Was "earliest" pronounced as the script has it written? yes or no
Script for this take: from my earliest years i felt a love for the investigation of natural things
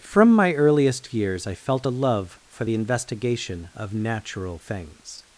yes